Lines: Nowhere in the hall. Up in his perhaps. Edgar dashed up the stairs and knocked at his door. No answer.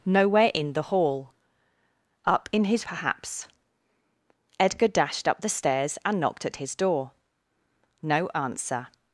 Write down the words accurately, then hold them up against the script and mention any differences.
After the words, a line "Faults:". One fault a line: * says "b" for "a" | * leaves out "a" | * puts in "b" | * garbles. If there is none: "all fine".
Nowhere in the hall. Up in his perhaps. Edgar dashed up the stairs and knocked at his door. No answer.
Faults:
all fine